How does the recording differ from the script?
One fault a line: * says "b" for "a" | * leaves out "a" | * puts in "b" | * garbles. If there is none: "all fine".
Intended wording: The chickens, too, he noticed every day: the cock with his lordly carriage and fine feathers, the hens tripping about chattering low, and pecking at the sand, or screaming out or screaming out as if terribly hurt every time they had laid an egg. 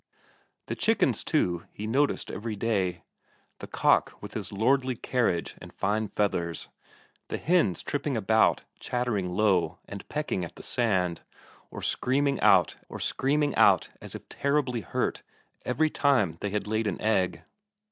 all fine